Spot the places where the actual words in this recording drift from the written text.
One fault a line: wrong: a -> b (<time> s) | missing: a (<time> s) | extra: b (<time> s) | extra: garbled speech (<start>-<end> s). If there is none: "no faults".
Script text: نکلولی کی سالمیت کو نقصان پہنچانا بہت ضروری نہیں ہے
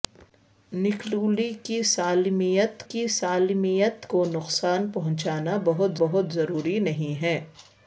extra: کی سالمیت (2.9 s)
extra: بہت (6.0 s)